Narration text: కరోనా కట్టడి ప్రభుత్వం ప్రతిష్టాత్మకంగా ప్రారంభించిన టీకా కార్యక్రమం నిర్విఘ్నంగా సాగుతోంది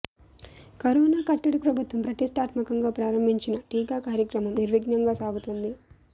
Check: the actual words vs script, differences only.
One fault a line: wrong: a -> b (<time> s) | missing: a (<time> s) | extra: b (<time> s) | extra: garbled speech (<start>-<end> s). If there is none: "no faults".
no faults